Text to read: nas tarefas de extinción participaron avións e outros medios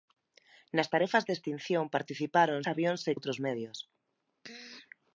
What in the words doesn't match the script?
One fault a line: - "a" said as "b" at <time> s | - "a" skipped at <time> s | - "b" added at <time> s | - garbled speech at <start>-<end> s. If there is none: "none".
none